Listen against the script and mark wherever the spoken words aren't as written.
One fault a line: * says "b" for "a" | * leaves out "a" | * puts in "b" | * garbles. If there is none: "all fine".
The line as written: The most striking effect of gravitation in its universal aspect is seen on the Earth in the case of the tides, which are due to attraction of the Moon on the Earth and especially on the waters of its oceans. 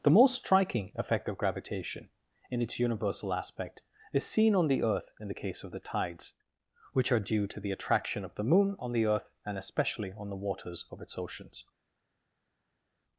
* puts in "the"